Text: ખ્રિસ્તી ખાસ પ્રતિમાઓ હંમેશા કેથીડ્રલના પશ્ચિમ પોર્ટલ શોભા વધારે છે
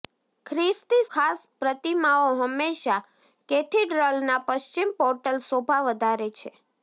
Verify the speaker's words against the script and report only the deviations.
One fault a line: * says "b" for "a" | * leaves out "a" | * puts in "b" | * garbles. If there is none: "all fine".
all fine